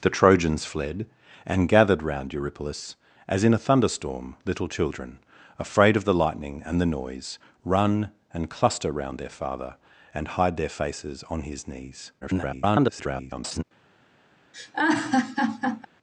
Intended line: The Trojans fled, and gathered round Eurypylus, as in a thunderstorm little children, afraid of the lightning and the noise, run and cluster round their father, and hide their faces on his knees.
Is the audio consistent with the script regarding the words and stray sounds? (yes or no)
no